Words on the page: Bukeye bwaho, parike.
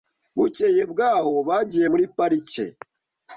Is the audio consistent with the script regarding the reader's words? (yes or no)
no